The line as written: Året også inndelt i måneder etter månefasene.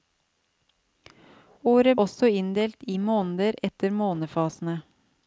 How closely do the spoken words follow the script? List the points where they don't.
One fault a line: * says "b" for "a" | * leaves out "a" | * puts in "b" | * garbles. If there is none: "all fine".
all fine